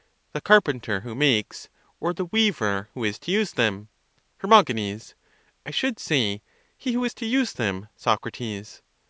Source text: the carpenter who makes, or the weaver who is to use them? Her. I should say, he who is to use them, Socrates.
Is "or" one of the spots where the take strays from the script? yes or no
no